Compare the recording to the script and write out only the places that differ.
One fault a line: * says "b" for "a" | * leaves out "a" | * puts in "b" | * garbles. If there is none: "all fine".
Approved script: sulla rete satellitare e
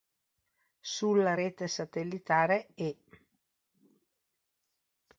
all fine